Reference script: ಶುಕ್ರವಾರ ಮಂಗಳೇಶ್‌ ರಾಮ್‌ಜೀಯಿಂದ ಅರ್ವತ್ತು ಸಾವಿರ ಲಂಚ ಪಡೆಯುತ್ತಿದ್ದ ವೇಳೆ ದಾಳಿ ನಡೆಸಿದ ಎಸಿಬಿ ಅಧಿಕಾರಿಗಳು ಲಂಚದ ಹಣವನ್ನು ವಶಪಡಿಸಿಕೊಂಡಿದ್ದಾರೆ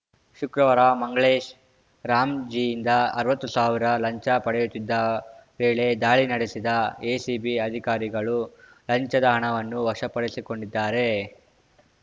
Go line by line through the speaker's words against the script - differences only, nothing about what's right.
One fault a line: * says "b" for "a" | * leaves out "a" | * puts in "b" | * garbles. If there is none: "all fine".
all fine